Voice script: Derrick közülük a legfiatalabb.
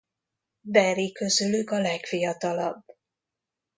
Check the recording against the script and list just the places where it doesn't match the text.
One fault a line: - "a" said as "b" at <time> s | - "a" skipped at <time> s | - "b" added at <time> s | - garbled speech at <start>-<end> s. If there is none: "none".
none